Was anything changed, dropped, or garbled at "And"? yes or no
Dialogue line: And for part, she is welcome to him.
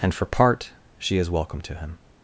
no